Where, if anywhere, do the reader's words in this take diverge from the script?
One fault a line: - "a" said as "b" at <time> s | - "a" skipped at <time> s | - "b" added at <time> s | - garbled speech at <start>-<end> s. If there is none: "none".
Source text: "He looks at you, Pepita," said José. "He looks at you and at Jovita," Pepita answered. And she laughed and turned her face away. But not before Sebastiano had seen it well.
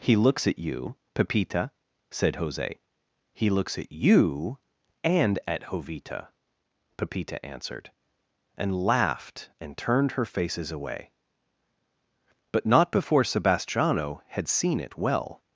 - "she" skipped at 8.8 s
- "face" said as "faces" at 10.2 s